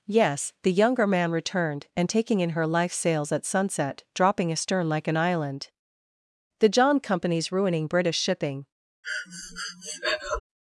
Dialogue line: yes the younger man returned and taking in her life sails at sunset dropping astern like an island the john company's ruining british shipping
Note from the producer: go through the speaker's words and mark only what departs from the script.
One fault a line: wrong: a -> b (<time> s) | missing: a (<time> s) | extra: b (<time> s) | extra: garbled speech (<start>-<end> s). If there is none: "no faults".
no faults